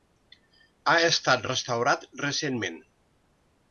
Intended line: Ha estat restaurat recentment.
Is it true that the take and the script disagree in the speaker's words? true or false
false